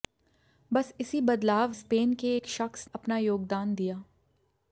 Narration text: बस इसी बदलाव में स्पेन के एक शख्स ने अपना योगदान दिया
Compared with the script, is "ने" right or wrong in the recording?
wrong